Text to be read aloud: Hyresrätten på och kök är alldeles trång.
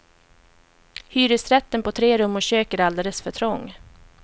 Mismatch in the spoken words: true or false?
true